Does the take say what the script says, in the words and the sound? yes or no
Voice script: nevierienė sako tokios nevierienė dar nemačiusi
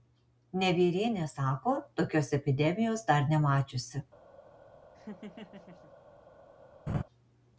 no